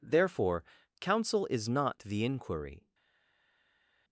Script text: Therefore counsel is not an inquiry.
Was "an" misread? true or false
true